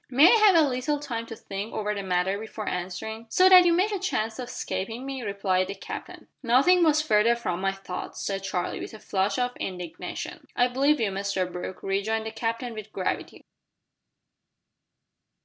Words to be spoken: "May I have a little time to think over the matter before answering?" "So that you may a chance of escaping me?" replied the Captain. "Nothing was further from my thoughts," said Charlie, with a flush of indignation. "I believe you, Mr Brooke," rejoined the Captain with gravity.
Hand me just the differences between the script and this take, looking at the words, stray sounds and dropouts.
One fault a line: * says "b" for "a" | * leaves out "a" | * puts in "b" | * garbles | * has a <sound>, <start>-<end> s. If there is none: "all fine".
all fine